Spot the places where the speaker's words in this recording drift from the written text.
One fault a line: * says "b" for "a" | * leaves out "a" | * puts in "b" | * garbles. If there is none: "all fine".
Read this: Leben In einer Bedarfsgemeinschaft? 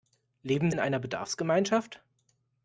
all fine